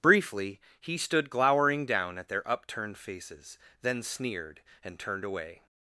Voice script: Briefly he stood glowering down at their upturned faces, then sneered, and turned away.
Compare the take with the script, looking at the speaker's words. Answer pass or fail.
pass